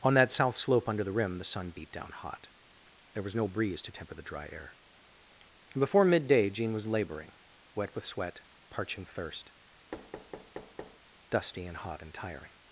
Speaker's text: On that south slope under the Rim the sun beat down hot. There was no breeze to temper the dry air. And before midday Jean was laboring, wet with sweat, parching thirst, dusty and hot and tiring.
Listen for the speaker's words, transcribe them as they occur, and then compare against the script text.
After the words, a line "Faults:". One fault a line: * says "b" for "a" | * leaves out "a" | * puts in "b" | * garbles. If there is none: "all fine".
On that south slope under the Rim the sun beat down hot. There was no breeze to temper the dry air. And before midday Jean was laboring, wet with sweat, parching thirst, dusty and hot and tiring.
Faults:
all fine